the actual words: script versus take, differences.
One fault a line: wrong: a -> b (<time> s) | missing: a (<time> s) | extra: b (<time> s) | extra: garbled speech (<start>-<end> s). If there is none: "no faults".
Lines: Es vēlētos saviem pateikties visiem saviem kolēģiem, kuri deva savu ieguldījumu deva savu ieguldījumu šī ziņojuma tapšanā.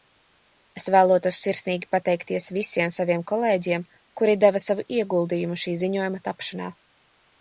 wrong: saviem -> sirsnīgi (1.5 s)
missing: deva savu ieguldījumu (5.6 s)